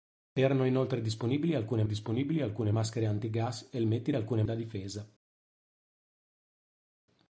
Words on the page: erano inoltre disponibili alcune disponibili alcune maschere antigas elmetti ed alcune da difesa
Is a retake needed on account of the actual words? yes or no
no